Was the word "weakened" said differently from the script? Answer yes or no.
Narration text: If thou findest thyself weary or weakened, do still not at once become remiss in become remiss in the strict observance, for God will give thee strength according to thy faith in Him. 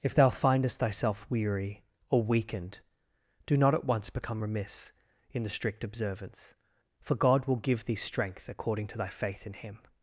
no